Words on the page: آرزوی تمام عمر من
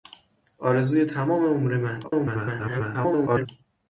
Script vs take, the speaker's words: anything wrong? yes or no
yes